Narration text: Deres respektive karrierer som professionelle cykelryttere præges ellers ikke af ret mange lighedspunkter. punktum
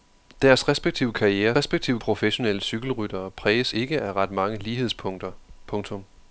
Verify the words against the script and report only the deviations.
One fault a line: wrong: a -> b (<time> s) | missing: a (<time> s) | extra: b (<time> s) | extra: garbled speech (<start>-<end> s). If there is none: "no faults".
wrong: som -> respektive (1.5 s)
missing: ellers (3.7 s)